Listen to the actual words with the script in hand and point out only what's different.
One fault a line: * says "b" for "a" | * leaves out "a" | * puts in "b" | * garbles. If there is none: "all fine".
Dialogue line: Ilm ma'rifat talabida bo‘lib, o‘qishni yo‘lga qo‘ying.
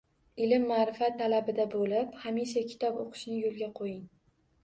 * puts in "hamisha kitob"